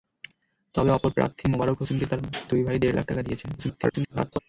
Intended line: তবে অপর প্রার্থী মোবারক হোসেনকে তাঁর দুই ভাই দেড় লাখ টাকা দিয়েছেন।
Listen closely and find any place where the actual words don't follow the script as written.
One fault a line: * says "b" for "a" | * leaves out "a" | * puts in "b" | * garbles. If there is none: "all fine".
* garbles